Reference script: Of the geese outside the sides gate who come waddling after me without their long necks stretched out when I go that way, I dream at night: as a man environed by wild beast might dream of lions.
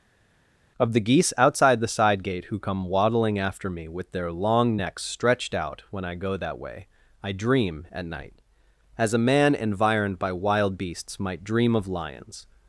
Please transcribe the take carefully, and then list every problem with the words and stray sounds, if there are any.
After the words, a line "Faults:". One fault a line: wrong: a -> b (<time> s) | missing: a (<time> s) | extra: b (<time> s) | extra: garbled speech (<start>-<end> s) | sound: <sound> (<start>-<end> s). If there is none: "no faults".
Of the geese outside the side gate who come waddling after me with their long necks stretched out when I go that way, I dream at night: as a man environed by wild beasts might dream of lions.
Faults:
wrong: sides -> side (1.9 s)
wrong: without -> with (3.9 s)
wrong: beast -> beasts (10.8 s)